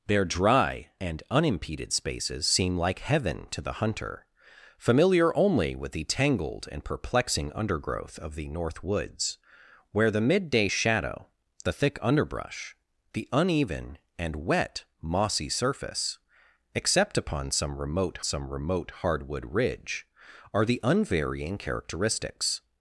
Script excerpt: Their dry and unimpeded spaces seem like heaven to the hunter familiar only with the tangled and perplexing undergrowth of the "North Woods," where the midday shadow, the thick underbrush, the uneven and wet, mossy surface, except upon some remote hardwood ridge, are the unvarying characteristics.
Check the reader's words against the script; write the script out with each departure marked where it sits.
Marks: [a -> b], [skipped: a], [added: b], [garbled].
Their dry and unimpeded spaces seem like heaven to the hunter familiar only with the tangled and perplexing undergrowth of the "North Woods," where the midday shadow, the thick underbrush, the uneven and wet, mossy surface, except upon some remote [added: some remote] hardwood ridge, are the unvarying characteristics.